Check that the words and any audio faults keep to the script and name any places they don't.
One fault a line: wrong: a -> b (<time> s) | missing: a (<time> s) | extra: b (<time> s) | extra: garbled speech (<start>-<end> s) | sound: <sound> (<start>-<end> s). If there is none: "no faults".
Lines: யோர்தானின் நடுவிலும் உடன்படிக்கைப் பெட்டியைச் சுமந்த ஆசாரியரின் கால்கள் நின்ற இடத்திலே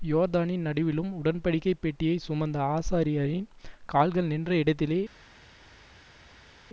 no faults